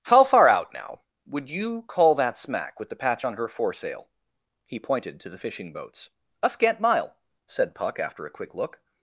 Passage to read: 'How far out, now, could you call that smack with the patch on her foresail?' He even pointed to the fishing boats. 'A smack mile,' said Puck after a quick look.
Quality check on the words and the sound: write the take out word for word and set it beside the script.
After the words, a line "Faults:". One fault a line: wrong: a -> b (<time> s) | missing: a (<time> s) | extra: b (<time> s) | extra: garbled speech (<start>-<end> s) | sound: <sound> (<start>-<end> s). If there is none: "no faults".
'How far out, now, would you call that smack with the patch on her foresail?' He pointed to the fishing boats. 'A scant mile,' said Puck after a quick look.
Faults:
wrong: could -> would (1.3 s)
missing: even (4.8 s)
wrong: smack -> scant (6.5 s)